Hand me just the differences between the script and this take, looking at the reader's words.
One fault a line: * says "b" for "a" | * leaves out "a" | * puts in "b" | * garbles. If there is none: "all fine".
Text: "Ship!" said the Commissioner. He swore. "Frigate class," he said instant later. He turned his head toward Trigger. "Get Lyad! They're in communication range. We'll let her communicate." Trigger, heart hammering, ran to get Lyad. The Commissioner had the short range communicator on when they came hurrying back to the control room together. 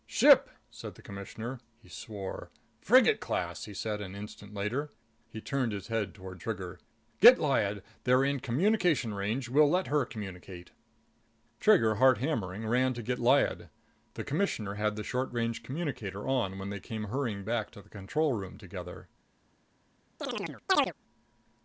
* puts in "an"